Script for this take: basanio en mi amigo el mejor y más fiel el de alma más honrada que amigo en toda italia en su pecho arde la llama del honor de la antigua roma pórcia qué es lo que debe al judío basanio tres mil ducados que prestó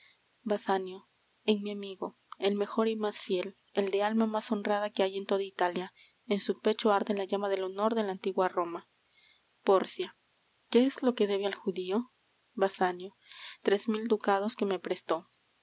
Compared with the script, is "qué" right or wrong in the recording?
right